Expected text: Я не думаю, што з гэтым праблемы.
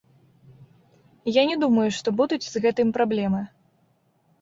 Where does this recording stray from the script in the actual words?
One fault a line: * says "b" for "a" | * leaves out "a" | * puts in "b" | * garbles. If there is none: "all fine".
* puts in "будуць"